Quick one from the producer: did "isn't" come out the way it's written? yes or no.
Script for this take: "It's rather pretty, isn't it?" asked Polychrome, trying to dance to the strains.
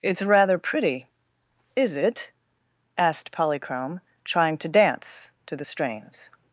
no